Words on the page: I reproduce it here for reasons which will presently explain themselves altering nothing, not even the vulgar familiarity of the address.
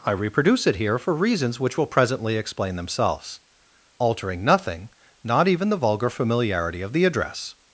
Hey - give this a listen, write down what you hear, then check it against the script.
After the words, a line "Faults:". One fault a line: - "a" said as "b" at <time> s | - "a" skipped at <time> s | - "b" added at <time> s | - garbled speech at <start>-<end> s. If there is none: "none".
I reproduce it here for reasons which will presently explain themselves altering nothing, not even the vulgar familiarity of the address.
Faults:
none